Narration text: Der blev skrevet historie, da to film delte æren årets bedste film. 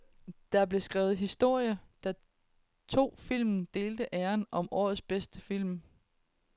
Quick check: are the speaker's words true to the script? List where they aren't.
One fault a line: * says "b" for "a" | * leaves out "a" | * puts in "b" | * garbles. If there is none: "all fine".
* puts in "som"